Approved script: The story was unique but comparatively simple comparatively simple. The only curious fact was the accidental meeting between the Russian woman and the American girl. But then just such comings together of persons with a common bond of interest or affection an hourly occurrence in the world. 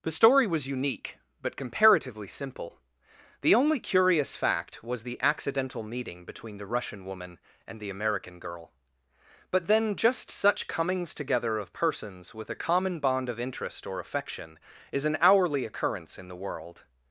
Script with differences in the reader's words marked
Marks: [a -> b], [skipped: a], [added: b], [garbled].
The story was unique but comparatively simple [skipped: comparatively simple.] The only curious fact was the accidental meeting between the Russian woman and the American girl. But then just such comings together of persons with a common bond of interest or affection [added: is] an hourly occurrence in the world.